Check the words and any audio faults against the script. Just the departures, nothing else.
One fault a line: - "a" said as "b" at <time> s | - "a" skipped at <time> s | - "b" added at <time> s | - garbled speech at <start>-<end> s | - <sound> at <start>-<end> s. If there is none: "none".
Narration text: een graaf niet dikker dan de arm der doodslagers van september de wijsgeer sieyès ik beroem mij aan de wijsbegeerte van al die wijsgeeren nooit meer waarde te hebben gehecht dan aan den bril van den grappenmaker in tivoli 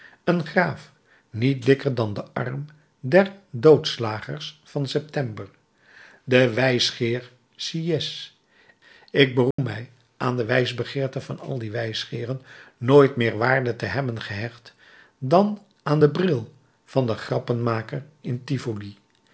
- dropout at 9.5-9.6 s